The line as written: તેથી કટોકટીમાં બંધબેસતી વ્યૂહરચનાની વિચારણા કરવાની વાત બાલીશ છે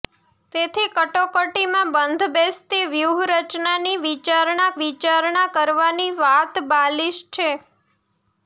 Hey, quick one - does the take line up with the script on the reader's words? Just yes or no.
no